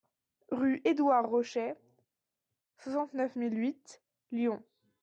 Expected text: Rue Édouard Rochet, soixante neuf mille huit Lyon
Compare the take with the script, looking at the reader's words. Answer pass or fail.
pass